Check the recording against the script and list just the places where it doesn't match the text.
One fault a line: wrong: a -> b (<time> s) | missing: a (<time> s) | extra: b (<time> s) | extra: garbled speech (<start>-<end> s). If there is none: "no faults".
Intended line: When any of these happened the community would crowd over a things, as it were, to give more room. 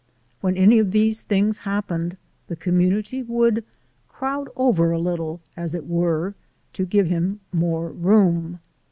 extra: things (1.2 s)
wrong: things -> little (5.0 s)
extra: him (7.1 s)